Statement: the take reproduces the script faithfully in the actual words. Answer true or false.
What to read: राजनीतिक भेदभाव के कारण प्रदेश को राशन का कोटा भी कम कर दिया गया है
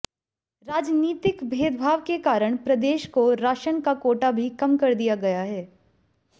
true